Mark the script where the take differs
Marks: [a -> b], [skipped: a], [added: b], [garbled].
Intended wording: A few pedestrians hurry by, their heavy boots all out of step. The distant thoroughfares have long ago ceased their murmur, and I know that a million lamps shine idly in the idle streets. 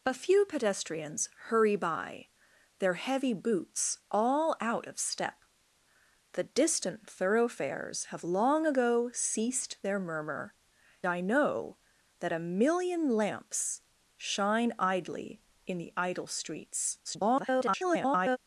A few pedestrians hurry by, their heavy boots all out of step. The distant thoroughfares have long ago ceased their murmur, [skipped: and] I know that a million lamps shine idly in the idle streets. [garbled]